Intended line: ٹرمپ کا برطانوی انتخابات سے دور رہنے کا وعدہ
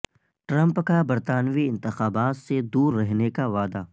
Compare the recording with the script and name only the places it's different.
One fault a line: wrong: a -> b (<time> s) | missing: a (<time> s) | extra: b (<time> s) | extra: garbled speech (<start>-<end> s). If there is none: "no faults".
no faults